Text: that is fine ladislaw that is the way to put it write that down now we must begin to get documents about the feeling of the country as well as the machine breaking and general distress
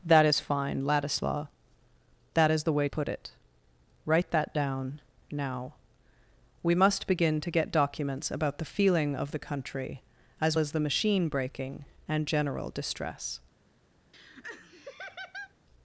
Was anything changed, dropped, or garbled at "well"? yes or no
yes